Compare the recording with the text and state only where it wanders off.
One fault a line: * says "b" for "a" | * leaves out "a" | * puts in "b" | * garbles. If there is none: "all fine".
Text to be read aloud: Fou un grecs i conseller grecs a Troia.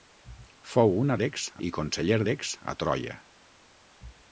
all fine